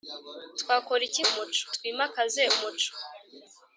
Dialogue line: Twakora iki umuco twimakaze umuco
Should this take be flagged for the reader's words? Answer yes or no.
no